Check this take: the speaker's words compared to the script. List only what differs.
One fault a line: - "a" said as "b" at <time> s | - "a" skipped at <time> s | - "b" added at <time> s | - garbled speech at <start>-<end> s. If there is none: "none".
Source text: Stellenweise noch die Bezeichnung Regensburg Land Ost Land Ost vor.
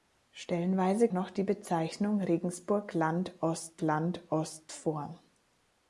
none